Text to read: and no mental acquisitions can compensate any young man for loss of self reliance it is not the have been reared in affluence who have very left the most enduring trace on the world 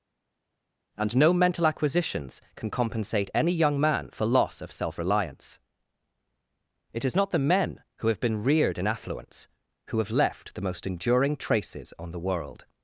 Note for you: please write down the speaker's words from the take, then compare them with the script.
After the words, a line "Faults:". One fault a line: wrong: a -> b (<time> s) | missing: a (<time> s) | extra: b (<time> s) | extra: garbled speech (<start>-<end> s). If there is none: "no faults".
and no mental acquisitions can compensate any young man for loss of self reliance it is not the men who have been reared in affluence who have left the most enduring traces on the world
Faults:
extra: men who (7.4 s)
missing: very (10.1 s)
wrong: trace -> traces (11.4 s)